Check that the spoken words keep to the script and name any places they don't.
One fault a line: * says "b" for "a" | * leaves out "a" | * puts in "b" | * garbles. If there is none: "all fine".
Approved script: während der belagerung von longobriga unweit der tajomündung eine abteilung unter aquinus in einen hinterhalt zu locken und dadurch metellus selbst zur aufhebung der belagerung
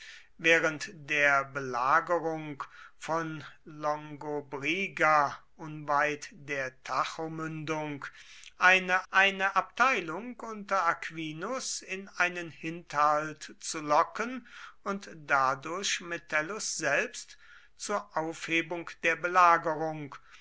* puts in "eine"